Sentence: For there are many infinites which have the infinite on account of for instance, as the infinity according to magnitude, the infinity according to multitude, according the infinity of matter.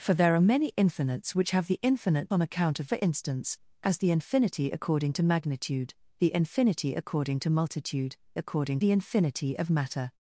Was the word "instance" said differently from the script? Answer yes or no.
no